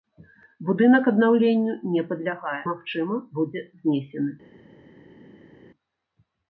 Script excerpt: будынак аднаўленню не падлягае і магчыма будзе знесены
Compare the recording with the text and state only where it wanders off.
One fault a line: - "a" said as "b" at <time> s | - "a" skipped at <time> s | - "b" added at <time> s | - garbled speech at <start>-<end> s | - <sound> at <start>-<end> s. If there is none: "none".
- "і" skipped at 2.6 s